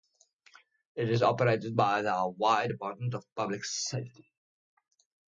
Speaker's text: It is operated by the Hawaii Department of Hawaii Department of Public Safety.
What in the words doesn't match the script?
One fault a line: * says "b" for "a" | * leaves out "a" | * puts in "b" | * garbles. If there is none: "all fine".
* leaves out "Hawaii Department of"